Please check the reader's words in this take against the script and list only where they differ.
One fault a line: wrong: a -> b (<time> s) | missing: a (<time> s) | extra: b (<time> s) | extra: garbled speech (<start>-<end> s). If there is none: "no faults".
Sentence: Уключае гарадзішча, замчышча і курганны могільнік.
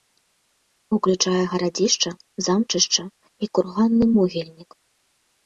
no faults